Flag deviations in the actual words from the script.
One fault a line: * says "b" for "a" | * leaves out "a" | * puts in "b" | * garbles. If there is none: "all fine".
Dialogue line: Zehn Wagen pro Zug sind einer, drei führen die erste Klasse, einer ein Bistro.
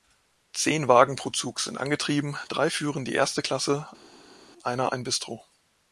* says "angetrieben" for "einer"